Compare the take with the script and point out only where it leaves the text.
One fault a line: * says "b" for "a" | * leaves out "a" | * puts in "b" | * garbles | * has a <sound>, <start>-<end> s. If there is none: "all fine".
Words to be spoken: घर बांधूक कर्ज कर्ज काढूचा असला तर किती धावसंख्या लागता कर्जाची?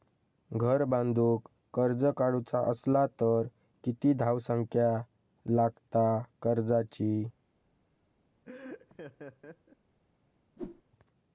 * leaves out "कर्ज"
* has a laugh, 8.4-9.8 s
* has a whoosh, 10.6-10.8 s